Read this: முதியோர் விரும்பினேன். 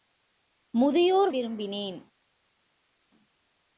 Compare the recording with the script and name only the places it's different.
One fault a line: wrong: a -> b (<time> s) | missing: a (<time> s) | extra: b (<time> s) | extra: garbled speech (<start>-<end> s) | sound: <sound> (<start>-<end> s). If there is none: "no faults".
no faults